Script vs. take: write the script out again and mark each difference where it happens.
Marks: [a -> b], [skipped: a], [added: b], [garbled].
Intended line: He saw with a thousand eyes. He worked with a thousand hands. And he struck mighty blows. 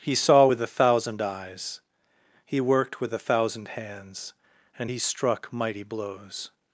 He saw with a thousand eyes. He worked with a thousand hands. And he struck mighty blows.